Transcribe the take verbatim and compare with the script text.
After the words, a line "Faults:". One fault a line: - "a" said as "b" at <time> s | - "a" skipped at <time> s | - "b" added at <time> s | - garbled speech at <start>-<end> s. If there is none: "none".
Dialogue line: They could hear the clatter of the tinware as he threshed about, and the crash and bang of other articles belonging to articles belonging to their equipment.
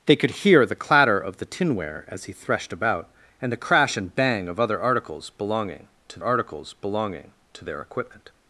They could hear the clatter of the tinware as he threshed about, and the crash and bang of other articles belonging to articles belonging to their equipment.
Faults:
none